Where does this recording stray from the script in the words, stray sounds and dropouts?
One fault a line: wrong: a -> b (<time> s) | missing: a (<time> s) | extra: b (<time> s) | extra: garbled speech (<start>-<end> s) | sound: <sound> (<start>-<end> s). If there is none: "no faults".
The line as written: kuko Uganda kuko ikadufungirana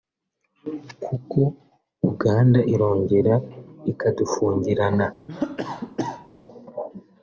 wrong: kuko -> irongera (2.7 s)
sound: cough (5.3-6.3 s)